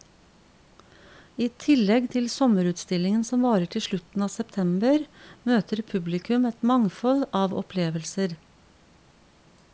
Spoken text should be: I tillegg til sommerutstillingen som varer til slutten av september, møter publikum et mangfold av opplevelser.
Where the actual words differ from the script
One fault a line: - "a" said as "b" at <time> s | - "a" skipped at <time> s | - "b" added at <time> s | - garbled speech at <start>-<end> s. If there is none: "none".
none